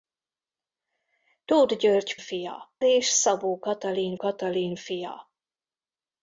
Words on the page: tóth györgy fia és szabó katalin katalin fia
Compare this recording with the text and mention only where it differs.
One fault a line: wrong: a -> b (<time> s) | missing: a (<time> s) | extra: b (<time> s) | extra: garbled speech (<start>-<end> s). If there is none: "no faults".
no faults